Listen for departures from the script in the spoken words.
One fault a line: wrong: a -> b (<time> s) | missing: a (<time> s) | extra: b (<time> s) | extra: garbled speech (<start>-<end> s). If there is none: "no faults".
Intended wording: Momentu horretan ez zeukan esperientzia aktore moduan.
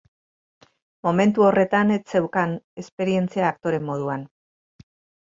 no faults